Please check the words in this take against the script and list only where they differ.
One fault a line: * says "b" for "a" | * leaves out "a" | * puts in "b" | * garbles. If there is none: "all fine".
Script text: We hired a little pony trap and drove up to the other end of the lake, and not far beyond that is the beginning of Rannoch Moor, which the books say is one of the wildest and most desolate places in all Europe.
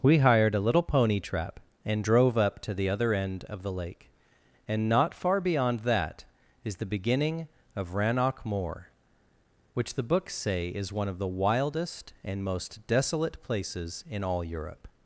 all fine